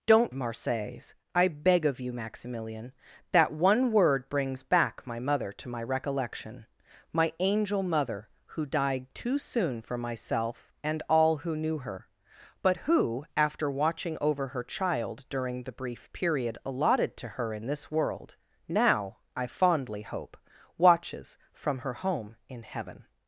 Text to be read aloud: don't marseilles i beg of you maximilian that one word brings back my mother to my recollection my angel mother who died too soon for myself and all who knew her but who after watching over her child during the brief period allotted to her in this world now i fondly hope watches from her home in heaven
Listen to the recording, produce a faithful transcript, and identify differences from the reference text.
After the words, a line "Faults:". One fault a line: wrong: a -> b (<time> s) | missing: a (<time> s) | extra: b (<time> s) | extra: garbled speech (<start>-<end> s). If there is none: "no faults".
don't marseilles i beg of you maximilian that one word brings back my mother to my recollection my angel mother who died too soon for myself and all who knew her but who after watching over her child during the brief period allotted to her in this world now i fondly hope watches from her home in heaven
Faults:
no faults